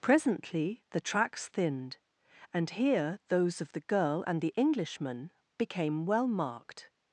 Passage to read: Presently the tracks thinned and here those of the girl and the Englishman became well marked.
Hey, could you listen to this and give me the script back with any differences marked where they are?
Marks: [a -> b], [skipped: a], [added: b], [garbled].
Presently the tracks thinned and here those of the girl and the Englishman became well marked.